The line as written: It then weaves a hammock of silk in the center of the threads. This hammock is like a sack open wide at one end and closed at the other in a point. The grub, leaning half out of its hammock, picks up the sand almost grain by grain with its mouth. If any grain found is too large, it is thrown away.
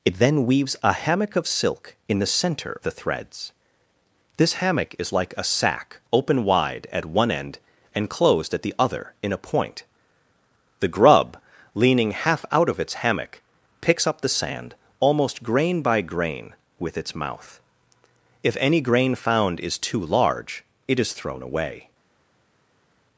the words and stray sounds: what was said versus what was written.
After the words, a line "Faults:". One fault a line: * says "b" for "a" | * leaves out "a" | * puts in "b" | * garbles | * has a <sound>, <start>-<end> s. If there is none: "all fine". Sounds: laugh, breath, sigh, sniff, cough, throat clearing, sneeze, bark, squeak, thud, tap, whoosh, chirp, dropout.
It then weaves a hammock of silk in the center the threads. This hammock is like a sack open wide at one end and closed at the other in a point. The grub, leaning half out of its hammock, picks up the sand almost grain by grain with its mouth. If any grain found is too large, it is thrown away.
Faults:
* leaves out "of"